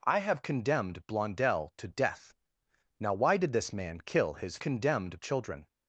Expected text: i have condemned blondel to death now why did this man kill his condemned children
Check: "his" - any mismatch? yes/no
no